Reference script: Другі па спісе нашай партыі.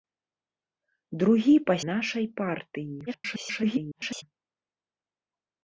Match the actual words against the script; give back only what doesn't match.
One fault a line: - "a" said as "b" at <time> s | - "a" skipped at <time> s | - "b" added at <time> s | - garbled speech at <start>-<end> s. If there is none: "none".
- "спісе" skipped at 1.8 s
- garbled speech at 3.1-4.2 s